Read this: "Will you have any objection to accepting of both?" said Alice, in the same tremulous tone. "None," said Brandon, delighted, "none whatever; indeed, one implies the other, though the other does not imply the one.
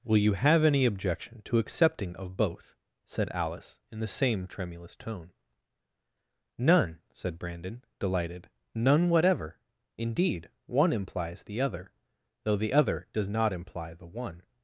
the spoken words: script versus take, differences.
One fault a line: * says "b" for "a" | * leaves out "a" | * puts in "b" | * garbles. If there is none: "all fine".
all fine